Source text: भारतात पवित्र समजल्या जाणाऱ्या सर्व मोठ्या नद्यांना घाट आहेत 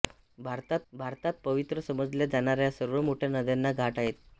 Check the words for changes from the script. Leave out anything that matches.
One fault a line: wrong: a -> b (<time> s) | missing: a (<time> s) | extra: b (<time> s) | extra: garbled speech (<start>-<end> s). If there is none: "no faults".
extra: भारतात (0.9 s)